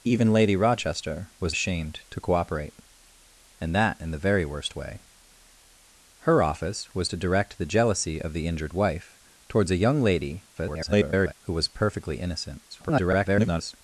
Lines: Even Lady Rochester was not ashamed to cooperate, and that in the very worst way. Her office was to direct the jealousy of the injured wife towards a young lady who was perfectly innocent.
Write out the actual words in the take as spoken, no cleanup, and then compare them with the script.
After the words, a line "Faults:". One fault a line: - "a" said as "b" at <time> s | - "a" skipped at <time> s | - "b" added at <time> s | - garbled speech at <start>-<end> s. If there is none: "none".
Even Lady Rochester was ashamed to cooperate, and that in the very worst way. Her office was to direct the jealousy of the injured wife towards a young lady [garbled] who was perfectly innocent. [garbled]
Faults:
- "not" skipped at 1.5 s
- garbled speech at 10.5-11.3 s
- garbled speech at 12.7-13.7 s